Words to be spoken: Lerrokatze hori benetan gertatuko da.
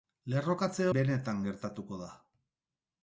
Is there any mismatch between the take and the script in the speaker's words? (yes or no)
yes